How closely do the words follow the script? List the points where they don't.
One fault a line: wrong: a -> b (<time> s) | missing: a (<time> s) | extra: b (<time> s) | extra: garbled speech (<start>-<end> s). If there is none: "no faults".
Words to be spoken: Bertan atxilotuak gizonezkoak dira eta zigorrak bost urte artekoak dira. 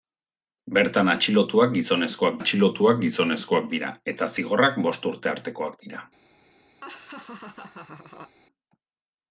extra: atxilotuak gizonezkoak (2.4 s)